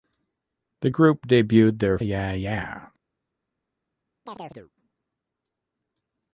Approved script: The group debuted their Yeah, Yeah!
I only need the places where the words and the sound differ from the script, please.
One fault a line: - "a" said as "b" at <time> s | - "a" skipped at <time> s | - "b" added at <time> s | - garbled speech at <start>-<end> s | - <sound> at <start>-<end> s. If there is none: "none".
- chirp at 4.3-4.7 s